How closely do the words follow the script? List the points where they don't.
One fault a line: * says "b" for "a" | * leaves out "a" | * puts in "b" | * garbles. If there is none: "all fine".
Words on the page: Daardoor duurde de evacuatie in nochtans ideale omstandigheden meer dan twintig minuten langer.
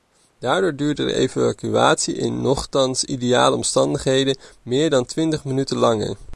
all fine